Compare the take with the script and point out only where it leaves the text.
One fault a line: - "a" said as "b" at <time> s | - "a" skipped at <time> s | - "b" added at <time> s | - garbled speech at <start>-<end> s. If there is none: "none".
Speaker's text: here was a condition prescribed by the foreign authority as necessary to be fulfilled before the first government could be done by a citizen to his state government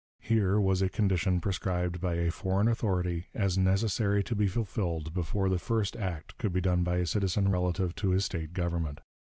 - "the" said as "a" at 2.1 s
- "government" said as "act" at 6.0 s
- "relative" added at 7.5 s